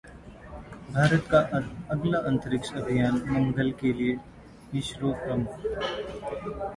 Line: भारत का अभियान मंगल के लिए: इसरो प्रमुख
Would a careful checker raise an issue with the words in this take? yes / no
yes